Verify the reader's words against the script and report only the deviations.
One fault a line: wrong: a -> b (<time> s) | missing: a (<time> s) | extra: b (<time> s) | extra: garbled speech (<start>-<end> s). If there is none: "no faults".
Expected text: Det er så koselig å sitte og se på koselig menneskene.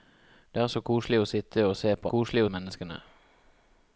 no faults